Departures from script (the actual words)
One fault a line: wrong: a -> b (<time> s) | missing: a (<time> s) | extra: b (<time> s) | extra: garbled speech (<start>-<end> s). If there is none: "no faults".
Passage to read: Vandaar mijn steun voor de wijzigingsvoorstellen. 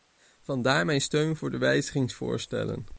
no faults